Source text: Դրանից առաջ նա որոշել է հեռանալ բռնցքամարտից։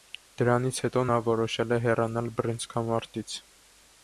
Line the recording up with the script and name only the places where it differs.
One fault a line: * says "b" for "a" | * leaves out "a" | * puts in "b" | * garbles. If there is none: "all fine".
* says "հետո" for "առաջ"